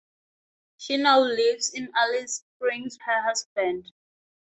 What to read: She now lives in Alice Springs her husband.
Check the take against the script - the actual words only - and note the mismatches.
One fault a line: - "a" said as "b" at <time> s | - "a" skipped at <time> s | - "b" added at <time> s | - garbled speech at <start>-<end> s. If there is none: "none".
none